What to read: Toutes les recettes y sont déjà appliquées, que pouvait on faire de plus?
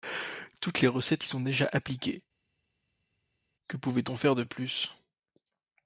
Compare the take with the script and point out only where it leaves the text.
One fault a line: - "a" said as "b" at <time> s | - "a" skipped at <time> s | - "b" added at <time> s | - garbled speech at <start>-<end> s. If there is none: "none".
none